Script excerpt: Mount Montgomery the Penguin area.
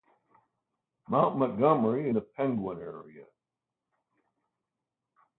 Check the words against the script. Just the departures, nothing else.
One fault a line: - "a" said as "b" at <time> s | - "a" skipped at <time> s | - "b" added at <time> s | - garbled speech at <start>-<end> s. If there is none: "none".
none